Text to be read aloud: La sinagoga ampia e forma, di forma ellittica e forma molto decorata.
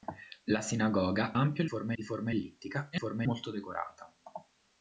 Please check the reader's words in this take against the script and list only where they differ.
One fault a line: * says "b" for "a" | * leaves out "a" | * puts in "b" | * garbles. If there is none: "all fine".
all fine